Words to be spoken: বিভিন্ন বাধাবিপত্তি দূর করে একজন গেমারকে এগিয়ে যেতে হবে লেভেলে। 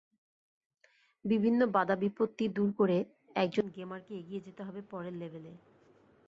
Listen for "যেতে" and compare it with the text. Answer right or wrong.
right